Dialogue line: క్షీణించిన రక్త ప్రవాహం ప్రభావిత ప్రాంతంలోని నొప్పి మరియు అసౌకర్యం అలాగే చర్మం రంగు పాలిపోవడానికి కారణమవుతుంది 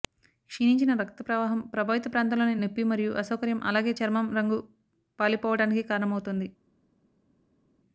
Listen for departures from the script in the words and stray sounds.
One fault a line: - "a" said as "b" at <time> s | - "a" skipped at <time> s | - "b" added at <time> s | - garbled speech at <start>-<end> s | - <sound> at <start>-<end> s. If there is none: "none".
none